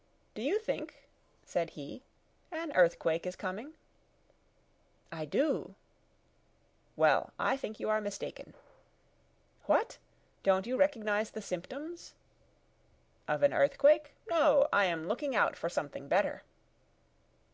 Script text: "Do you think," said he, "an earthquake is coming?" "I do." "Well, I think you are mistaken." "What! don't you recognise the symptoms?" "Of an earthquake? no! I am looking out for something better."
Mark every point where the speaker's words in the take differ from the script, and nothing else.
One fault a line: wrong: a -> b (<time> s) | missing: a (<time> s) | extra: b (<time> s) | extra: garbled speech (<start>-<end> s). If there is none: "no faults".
no faults